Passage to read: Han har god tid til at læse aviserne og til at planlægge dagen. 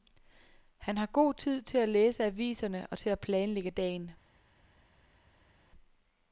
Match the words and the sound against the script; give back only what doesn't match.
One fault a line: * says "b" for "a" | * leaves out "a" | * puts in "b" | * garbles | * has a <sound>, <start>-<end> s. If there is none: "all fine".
all fine